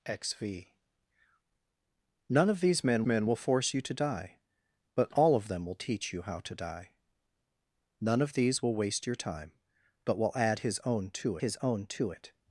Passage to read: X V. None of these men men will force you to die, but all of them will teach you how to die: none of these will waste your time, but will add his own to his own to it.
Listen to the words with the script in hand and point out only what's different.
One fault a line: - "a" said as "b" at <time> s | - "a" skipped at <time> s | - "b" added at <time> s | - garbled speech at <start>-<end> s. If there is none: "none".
none